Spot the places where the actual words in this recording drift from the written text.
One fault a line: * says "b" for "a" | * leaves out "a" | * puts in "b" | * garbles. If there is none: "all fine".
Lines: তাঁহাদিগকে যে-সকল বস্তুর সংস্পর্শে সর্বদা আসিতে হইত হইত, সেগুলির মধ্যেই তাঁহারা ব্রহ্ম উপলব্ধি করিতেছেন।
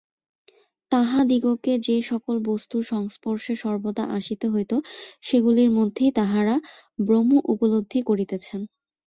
* leaves out "হইত"